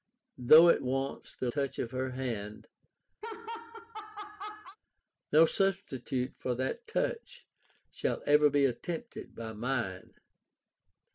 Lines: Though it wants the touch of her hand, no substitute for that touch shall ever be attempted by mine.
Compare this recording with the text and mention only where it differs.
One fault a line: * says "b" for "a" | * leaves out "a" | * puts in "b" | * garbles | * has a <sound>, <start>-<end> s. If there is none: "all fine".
* has a laugh, 3.2-4.8 s